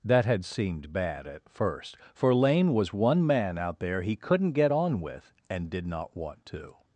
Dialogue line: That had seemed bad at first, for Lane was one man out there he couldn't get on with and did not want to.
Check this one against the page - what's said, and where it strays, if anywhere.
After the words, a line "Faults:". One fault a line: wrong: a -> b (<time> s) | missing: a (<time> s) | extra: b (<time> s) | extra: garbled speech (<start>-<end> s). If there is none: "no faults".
That had seemed bad at first, for Lane was one man out there he couldn't get on with and did not want to.
Faults:
no faults